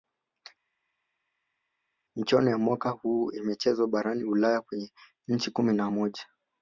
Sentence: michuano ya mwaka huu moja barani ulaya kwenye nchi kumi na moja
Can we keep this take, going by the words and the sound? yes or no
no